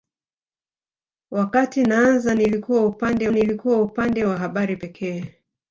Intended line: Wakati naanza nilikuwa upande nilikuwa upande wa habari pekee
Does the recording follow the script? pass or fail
pass